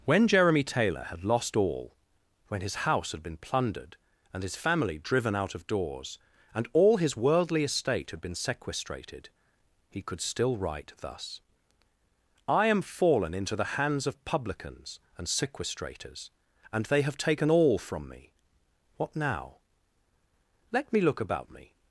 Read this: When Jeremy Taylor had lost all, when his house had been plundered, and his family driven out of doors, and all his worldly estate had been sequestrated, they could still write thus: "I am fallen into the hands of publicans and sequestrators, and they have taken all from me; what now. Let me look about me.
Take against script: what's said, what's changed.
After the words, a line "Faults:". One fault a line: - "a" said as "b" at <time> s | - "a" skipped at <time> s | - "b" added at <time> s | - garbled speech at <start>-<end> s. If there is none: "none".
When Jeremy Taylor had lost all, when his house had been plundered, and his family driven out of doors, and all his worldly estate had been sequestrated, he could still write thus: "I am fallen into the hands of publicans and sequestrators, and they have taken all from me; what now. Let me look about me.
Faults:
- "they" said as "he" at 9.9 s